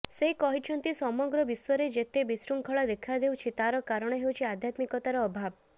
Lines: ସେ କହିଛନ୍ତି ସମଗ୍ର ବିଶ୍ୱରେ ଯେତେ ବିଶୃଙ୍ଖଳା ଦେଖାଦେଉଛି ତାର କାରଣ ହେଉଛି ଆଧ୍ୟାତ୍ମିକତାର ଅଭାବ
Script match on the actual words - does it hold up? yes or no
yes